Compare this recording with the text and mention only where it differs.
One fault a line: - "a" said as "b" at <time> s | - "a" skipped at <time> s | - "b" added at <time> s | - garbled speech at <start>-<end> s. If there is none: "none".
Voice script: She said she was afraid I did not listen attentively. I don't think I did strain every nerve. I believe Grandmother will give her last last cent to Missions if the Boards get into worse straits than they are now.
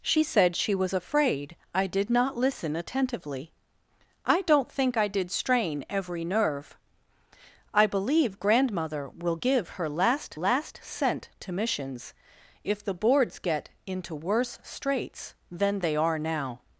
none